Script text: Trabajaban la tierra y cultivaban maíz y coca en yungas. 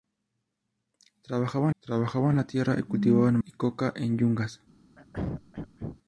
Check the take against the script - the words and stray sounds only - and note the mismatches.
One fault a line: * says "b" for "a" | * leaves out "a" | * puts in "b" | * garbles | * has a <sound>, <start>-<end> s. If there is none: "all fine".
* puts in "trabajaban"
* leaves out "maíz"
* has a throat clearing, 5.0-6.0 s